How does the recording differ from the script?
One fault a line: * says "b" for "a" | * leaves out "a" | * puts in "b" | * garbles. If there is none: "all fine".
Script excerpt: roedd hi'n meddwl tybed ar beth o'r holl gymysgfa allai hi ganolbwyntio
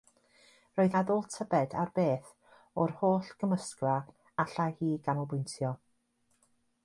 * leaves out "hi'n"